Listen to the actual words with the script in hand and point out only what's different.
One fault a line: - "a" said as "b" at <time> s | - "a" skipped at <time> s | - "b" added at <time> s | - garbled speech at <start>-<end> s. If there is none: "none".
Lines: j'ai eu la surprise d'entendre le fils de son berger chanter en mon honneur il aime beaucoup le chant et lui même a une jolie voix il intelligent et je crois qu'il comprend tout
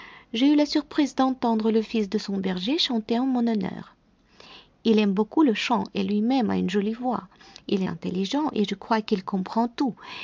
none